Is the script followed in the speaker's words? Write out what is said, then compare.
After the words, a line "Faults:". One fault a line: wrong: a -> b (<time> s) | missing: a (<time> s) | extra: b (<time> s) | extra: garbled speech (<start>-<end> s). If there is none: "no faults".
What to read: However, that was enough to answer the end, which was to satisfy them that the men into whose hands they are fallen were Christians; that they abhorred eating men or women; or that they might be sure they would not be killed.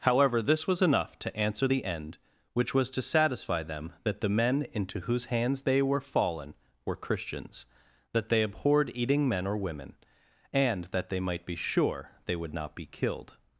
However, this was enough to answer the end, which was to satisfy them that the men into whose hands they were fallen were Christians; that they abhorred eating men or women; and that they might be sure they would not be killed.
Faults:
wrong: that -> this (0.4 s)
wrong: are -> were (5.8 s)
wrong: or -> and (10.5 s)